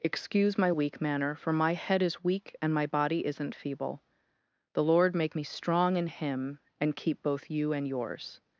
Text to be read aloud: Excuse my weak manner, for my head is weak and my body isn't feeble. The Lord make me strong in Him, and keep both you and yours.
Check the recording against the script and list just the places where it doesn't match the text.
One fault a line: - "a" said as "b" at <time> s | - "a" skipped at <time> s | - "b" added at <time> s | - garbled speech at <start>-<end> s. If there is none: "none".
none